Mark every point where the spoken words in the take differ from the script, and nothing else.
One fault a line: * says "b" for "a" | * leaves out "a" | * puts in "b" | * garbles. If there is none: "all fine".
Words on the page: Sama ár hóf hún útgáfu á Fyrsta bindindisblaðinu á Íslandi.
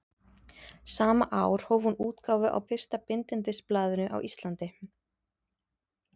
all fine